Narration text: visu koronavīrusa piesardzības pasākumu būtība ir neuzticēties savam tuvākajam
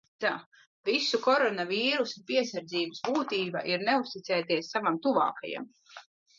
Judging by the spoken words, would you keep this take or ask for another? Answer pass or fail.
fail